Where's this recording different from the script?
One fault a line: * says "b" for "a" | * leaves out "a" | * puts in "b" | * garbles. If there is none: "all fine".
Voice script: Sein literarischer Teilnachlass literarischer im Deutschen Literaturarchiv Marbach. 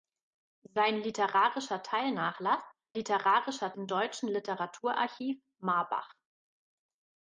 all fine